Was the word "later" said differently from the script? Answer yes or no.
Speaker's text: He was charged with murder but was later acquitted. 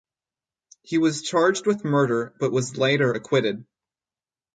no